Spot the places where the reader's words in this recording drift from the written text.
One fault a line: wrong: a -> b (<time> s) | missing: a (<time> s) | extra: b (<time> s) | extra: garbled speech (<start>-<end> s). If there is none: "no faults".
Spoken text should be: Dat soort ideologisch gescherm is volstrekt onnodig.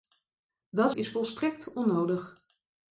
missing: soort ideologisch gescherm (0.9 s)